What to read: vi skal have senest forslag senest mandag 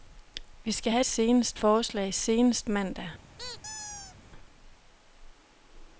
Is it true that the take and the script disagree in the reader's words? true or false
false